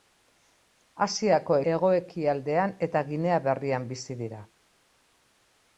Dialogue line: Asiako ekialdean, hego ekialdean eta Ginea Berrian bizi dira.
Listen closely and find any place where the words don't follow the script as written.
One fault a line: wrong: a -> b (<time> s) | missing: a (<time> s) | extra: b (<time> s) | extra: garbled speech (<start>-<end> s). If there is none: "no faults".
missing: ekialdean (1.6 s)